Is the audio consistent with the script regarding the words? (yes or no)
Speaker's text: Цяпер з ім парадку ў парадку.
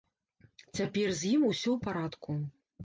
no